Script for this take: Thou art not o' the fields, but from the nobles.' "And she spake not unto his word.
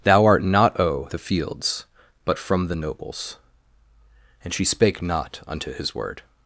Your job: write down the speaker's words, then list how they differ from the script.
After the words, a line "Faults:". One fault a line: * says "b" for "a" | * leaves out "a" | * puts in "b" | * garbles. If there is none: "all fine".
Thou art not o' the fields, but from the nobles.' "And she spake not unto his word.
Faults:
all fine